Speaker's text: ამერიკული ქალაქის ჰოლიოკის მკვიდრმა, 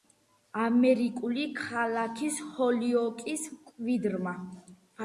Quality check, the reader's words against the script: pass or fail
pass